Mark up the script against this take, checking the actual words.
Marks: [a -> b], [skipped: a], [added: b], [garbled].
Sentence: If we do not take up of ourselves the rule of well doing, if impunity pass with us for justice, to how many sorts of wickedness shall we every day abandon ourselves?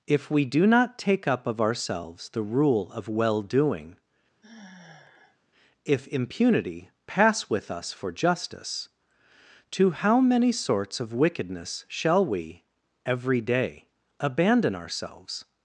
If we do not take up of ourselves the rule of well doing, if impunity pass with us for justice, to how many sorts of wickedness shall we every day abandon ourselves?